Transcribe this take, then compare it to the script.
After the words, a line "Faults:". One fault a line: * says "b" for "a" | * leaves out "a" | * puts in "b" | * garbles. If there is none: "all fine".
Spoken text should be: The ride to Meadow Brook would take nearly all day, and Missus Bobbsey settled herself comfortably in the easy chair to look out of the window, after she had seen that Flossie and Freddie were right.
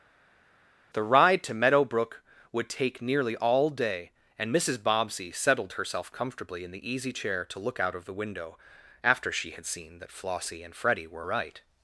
The ride to Meadow Brook would take nearly all day, and Missus Bobbsey settled herself comfortably in the easy chair to look out of the window, after she had seen that Flossie and Freddie were right.
Faults:
all fine